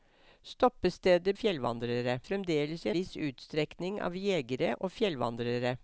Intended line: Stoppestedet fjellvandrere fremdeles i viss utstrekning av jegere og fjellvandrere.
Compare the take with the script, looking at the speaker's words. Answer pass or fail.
pass